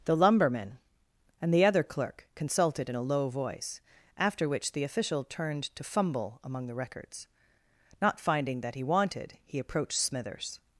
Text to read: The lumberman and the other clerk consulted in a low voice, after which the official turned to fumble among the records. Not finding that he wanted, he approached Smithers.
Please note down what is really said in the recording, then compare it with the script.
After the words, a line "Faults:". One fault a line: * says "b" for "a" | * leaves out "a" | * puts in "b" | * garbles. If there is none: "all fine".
The lumberman and the other clerk consulted in a low voice, after which the official turned to fumble among the records. Not finding that he wanted, he approached Smithers.
Faults:
all fine